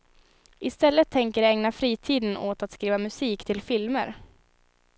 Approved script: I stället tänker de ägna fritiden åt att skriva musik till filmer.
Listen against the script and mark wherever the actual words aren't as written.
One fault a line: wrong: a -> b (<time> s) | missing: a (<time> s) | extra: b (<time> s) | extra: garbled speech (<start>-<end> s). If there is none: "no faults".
no faults